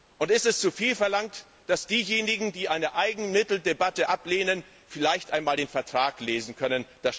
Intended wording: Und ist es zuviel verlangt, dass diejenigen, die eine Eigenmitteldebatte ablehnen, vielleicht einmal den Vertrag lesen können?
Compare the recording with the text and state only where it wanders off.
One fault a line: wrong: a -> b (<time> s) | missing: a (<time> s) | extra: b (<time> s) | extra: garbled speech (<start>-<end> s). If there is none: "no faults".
no faults